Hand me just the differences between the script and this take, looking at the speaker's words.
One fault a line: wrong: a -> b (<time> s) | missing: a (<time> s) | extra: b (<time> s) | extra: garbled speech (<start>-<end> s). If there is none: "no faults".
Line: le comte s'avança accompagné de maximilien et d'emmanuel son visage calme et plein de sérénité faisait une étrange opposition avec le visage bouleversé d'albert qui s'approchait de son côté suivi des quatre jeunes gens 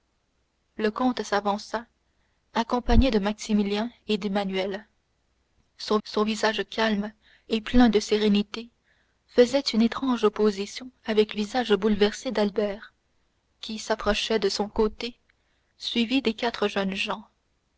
extra: son (6.0 s)
missing: le (11.3 s)